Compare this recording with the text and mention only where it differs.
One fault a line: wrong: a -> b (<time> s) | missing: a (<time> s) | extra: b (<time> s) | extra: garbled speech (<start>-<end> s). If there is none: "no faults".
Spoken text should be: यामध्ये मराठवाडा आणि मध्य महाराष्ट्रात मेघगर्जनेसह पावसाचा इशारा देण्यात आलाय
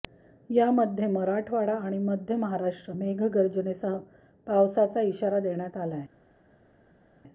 no faults